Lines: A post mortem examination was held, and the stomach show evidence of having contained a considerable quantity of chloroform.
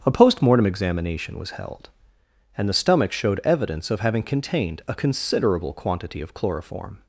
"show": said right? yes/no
no